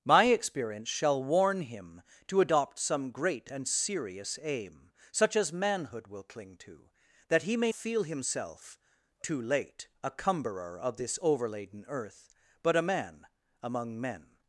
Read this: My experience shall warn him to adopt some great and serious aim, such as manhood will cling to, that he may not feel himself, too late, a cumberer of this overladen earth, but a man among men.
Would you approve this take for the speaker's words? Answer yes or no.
no